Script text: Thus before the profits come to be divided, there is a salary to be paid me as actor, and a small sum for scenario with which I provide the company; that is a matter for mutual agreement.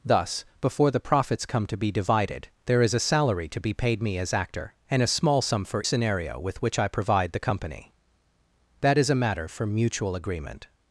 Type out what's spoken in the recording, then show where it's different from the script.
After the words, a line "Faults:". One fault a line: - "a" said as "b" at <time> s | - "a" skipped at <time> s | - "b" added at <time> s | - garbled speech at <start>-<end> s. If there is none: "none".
Thus before the profits come to be divided, there is a salary to be paid me as actor, and a small sum for scenario with which I provide the company; that is a matter for mutual agreement.
Faults:
none